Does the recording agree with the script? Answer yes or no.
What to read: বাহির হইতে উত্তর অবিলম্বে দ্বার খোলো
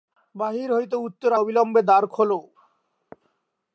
yes